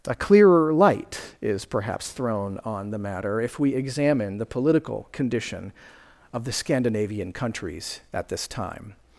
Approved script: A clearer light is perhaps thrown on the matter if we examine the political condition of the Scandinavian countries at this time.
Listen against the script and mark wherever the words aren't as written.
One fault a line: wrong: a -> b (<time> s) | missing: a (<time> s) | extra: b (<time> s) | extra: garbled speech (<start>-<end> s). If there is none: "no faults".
no faults